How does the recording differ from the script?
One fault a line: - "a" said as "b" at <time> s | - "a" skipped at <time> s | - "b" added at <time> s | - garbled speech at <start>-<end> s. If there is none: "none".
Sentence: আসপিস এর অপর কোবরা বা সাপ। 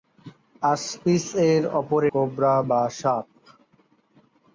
none